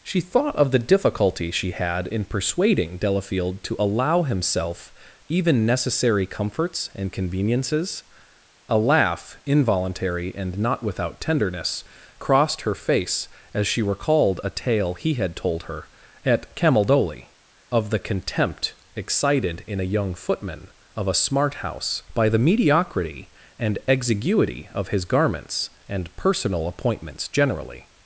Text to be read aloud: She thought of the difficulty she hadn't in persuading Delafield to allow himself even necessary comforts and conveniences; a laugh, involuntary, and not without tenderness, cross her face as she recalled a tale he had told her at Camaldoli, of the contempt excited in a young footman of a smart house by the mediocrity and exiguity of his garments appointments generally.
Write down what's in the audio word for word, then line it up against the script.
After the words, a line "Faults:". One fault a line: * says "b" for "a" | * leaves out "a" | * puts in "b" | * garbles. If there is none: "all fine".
She thought of the difficulty she had in persuading Delafield to allow himself even necessary comforts and conveniences; a laugh, involuntary, and not without tenderness, crossed her face as she recalled a tale he had told her at Camaldoli, of the contempt excited in a young footman of a smart house by the mediocrity and exiguity of his garments and personal appointments generally.
Faults:
* says "had" for "hadn't"
* says "crossed" for "cross"
* puts in "and personal"